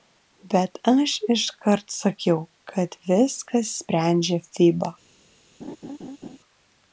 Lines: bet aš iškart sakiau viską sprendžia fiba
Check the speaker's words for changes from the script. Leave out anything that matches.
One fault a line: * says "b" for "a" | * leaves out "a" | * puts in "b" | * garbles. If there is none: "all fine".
* puts in "kad"